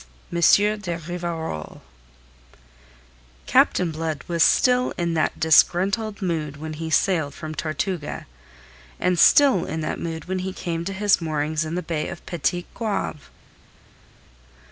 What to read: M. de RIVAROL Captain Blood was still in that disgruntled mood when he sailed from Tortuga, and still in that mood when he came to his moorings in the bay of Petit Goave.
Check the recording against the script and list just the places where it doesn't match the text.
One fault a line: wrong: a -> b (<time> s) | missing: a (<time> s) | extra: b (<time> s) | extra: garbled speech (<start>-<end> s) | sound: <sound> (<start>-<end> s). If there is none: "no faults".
no faults